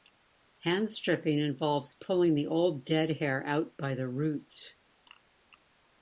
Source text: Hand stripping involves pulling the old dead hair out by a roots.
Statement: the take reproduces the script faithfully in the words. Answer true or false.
false